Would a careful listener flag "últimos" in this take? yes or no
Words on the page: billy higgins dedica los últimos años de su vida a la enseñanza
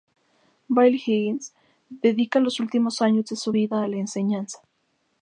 no